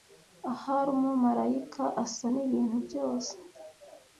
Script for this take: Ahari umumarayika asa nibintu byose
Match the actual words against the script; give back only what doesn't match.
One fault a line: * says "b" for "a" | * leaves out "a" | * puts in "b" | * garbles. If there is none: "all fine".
all fine